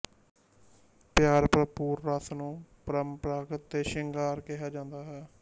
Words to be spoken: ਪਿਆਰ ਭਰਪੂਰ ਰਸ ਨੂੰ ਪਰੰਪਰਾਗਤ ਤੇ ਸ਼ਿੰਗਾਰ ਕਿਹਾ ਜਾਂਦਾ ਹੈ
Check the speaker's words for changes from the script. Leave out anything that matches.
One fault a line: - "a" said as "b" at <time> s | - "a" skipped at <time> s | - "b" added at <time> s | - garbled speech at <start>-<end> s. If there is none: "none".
none